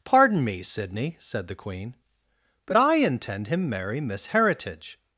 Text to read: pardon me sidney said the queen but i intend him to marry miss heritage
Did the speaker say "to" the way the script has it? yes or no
no